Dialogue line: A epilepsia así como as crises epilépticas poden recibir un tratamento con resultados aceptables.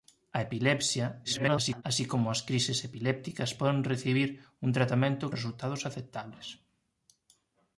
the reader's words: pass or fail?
fail